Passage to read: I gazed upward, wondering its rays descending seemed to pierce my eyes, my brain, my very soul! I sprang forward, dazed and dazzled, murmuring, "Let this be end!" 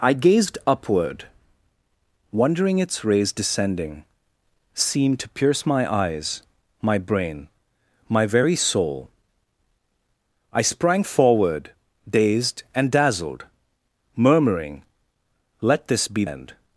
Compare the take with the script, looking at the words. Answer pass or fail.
pass